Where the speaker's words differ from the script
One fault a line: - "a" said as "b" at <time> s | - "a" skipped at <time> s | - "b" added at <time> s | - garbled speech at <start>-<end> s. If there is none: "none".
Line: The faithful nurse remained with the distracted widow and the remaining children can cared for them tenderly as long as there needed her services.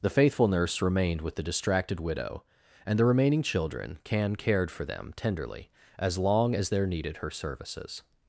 none